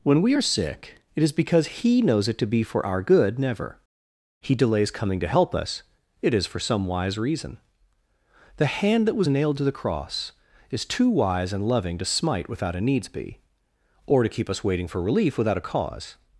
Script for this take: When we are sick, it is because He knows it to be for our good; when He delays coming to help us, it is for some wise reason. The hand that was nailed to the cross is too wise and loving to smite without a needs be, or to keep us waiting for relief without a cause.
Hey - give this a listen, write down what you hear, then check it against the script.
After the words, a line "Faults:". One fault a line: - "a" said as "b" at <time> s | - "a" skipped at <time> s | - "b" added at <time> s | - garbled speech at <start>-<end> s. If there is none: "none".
When we are sick, it is because He knows it to be for our good; never He delays coming to help us, it is for some wise reason. The hand that was nailed to the cross is too wise and loving to smite without a needs be, or to keep us waiting for relief without a cause.
Faults:
- "when" said as "never" at 3.4 s